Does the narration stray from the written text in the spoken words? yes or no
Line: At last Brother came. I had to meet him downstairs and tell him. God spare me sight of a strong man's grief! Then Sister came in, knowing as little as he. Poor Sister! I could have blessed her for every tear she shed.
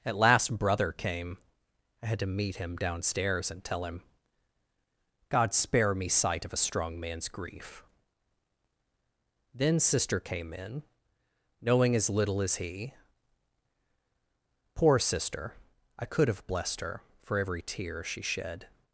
no